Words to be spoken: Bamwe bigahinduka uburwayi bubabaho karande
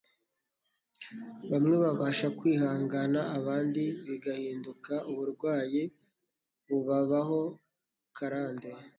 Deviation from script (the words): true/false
true